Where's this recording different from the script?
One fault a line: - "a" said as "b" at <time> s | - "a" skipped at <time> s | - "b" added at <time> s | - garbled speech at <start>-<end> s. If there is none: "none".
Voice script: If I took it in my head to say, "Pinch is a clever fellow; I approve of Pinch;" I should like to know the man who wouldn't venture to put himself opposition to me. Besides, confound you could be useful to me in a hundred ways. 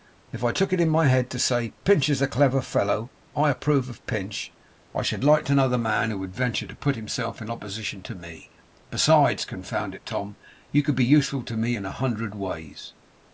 - "wouldn't" said as "would" at 6.2 s
- "in" added at 7.4 s
- "it Tom" added at 9.9 s